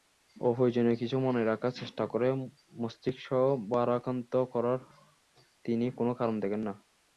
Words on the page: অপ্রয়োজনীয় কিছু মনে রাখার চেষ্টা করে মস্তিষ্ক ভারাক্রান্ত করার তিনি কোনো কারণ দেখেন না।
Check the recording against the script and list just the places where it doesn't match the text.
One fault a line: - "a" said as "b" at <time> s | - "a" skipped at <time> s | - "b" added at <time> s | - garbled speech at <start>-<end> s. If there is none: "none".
none